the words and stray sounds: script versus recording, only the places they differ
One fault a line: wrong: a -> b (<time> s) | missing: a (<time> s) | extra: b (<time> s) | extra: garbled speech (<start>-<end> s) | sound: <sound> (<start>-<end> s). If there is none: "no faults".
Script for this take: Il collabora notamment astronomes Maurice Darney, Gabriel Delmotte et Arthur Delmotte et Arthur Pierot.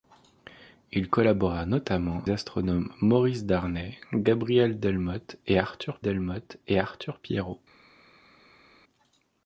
no faults